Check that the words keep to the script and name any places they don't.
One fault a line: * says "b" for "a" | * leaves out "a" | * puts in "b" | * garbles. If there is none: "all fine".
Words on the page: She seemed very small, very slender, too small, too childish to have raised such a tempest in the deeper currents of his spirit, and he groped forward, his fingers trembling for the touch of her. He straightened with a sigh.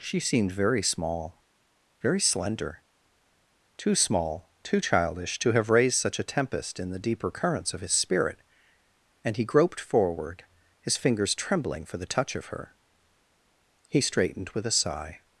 all fine